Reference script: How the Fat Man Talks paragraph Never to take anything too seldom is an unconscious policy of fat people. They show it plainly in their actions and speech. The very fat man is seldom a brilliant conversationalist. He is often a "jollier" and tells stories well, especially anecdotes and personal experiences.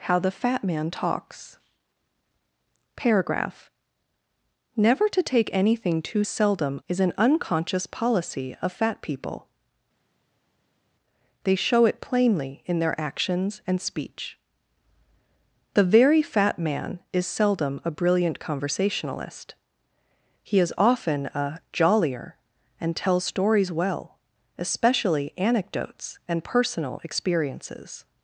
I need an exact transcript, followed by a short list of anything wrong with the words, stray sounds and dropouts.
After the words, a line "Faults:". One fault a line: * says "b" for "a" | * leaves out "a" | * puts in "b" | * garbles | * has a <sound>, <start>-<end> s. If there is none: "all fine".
How the Fat Man Talks paragraph Never to take anything too seldom is an unconscious policy of fat people. They show it plainly in their actions and speech. The very fat man is seldom a brilliant conversationalist. He is often a "jollier" and tells stories well, especially anecdotes and personal experiences.
Faults:
all fine